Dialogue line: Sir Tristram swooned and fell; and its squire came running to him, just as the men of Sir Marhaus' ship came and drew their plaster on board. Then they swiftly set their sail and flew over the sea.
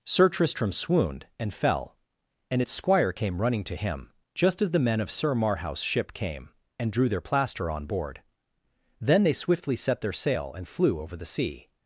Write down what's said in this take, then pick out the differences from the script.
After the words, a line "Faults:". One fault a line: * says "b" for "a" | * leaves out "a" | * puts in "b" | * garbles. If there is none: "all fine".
Sir Tristram swooned and fell; and its squire came running to him, just as the men of Sir Marhaus' ship came and drew their plaster on board. Then they swiftly set their sail and flew over the sea.
Faults:
all fine